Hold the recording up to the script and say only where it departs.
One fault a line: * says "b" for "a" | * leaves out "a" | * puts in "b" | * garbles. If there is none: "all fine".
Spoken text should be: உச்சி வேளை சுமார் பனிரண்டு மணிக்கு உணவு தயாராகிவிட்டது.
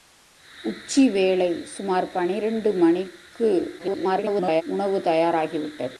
* garbles